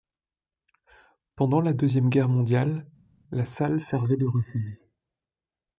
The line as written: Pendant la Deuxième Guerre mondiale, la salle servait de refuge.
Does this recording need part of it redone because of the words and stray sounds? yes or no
no